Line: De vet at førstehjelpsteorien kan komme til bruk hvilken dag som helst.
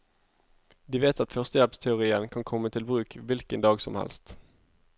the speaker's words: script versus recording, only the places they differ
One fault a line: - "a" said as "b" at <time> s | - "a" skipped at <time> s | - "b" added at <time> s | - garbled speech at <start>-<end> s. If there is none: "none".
none